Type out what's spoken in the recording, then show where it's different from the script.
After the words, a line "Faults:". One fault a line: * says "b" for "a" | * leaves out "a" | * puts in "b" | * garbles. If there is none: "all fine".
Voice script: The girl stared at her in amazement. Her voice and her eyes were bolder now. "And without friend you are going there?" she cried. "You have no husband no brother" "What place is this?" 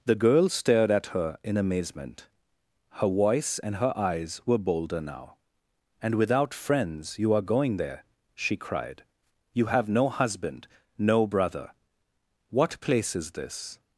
The girl stared at her in amazement. Her voice and her eyes were bolder now. "And without friends you are going there?" she cried. "You have no husband no brother" "What place is this?"
Faults:
* says "friends" for "friend"